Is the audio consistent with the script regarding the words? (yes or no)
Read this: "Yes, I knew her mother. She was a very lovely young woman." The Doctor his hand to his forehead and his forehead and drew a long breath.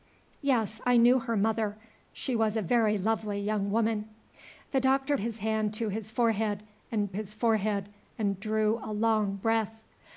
yes